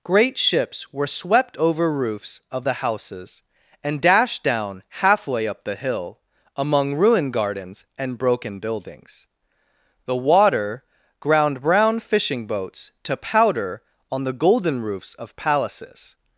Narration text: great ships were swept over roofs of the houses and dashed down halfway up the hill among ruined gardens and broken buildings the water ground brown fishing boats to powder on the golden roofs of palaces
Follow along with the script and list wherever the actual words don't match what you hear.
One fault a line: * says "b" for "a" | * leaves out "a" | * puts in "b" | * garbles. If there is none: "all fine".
all fine